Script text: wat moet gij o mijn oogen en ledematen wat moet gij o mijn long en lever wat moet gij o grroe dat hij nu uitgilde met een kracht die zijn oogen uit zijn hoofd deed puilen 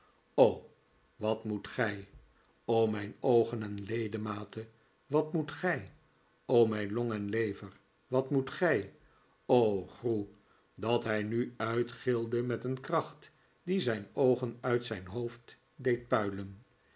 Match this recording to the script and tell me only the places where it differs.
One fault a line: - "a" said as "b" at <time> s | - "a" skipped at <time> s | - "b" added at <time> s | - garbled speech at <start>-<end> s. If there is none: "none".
none